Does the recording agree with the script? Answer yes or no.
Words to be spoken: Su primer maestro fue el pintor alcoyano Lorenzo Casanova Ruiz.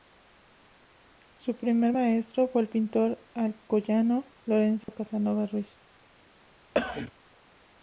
yes